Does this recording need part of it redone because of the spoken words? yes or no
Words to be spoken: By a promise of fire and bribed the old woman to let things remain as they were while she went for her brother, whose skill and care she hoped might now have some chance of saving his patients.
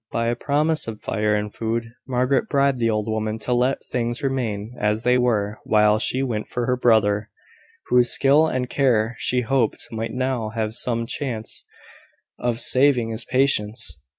yes